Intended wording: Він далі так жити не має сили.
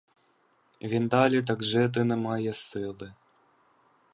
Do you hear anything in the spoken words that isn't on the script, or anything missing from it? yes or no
no